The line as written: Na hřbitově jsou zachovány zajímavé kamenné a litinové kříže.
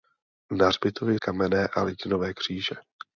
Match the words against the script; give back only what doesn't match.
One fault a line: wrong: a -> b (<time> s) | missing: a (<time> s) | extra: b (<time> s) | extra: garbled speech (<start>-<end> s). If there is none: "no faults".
missing: jsou zachovány zajímavé (1.2 s)